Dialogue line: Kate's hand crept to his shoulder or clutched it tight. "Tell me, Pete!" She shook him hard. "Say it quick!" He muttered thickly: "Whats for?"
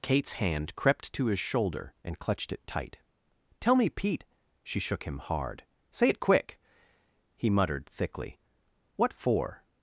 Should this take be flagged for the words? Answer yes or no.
yes